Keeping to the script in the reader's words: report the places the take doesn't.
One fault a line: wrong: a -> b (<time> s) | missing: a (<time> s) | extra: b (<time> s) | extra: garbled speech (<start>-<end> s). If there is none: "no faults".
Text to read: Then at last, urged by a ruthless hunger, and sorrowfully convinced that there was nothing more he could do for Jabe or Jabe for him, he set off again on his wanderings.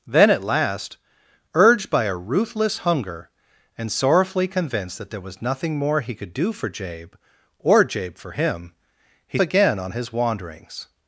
missing: set off (9.4 s)